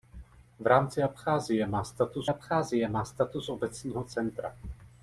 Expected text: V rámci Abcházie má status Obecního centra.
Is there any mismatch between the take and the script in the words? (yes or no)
yes